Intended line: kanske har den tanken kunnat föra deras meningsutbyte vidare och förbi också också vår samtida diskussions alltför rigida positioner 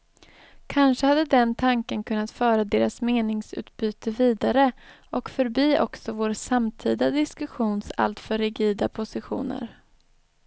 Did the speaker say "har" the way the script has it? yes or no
no